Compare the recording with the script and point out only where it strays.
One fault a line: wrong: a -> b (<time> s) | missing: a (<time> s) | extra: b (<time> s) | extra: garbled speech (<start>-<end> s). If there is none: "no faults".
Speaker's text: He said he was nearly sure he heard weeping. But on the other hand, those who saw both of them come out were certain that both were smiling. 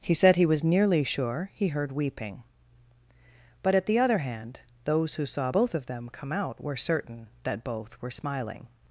wrong: on -> at (3.8 s)